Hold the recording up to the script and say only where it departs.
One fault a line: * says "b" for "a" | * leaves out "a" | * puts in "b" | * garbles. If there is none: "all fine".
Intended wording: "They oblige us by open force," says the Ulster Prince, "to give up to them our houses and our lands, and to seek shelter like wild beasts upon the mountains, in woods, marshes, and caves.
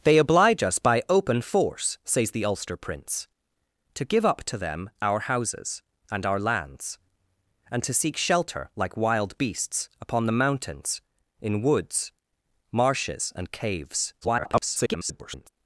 * garbles